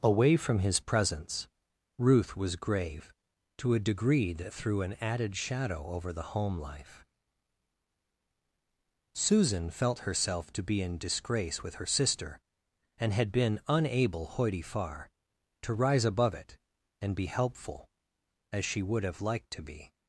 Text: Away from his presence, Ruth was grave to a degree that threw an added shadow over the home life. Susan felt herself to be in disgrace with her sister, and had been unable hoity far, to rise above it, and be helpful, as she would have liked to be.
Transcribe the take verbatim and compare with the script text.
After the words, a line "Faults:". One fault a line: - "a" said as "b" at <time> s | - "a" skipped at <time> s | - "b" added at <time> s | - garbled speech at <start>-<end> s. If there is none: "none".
Away from his presence, Ruth was grave to a degree that threw an added shadow over the home life. Susan felt herself to be in disgrace with her sister, and had been unable hoity far, to rise above it, and be helpful, as she would have liked to be.
Faults:
none